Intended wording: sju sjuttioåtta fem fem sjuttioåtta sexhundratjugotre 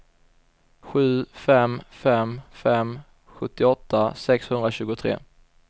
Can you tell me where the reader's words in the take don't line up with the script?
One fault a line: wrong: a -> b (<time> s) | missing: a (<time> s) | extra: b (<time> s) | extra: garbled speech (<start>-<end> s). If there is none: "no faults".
wrong: sjuttioåtta -> fem (1.3 s)